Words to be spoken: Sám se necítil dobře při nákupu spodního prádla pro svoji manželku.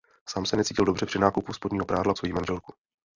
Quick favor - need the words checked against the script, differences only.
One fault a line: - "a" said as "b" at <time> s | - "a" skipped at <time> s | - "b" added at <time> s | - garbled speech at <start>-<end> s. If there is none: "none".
- "pro" skipped at 2.1 s